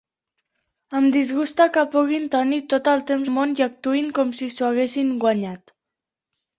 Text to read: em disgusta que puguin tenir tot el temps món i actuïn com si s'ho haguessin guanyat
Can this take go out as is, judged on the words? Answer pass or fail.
pass